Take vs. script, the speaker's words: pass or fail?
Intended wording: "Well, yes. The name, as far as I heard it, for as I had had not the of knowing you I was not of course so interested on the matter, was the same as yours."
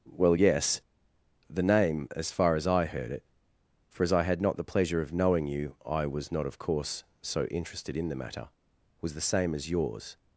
fail